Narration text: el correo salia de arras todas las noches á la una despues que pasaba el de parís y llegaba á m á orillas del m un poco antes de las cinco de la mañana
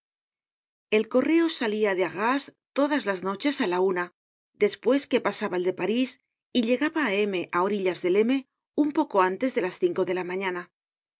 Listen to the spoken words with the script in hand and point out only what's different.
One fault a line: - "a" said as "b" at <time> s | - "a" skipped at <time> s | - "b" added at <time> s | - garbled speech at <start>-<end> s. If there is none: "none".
none